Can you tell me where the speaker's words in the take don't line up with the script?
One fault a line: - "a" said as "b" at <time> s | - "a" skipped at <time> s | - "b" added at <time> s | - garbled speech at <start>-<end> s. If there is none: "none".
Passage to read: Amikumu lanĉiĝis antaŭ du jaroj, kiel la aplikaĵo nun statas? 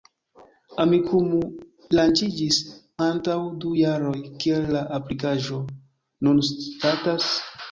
none